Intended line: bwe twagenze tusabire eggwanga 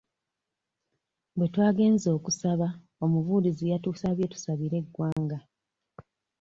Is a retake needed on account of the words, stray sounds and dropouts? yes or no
yes